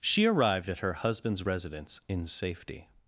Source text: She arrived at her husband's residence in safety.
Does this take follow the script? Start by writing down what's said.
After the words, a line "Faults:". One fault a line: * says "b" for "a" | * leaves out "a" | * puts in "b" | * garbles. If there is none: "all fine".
She arrived at her husband's residence in safety.
Faults:
all fine